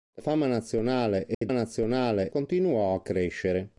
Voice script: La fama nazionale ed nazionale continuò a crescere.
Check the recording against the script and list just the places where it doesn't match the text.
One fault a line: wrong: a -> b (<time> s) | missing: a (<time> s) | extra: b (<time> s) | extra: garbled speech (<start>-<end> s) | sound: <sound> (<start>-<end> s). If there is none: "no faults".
sound: dropout (1.3-1.4 s)